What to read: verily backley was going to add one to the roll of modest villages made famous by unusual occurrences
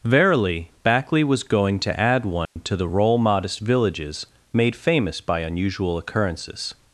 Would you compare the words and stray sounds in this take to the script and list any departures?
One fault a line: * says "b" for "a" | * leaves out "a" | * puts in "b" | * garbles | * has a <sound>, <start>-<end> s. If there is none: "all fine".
* has a dropout, 2.4-2.6 s
* leaves out "of"